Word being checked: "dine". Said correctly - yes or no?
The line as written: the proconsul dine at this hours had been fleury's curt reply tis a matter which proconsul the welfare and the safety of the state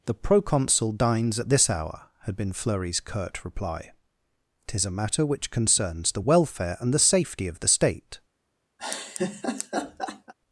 no